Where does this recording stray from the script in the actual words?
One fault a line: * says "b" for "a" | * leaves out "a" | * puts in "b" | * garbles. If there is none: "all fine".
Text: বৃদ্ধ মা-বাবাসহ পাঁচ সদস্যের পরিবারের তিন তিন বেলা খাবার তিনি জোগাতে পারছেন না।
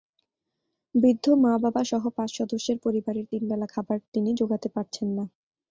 * leaves out "তিন"